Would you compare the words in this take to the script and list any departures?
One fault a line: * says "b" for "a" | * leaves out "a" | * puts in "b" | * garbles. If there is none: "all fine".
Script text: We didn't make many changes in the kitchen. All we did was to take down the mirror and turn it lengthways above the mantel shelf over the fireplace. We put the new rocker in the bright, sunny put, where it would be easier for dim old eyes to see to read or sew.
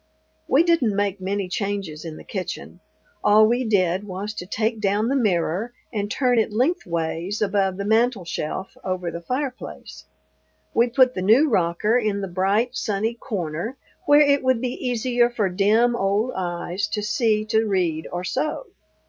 * says "corner" for "put"